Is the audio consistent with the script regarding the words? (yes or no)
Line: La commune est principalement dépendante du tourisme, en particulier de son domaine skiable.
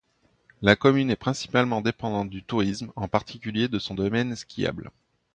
yes